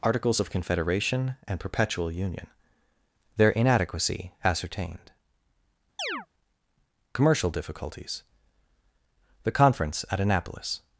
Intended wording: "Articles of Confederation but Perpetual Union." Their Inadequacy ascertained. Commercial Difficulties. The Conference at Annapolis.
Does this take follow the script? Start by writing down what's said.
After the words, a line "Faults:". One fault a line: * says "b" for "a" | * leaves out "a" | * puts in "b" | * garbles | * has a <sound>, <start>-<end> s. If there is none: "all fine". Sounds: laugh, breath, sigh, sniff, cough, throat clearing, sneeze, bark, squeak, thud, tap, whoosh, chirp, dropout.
"Articles of Confederation and Perpetual Union." Their Inadequacy ascertained. Commercial Difficulties. The Conference at Annapolis.
Faults:
* says "and" for "but"
* has a chirp, 6.0-6.3 s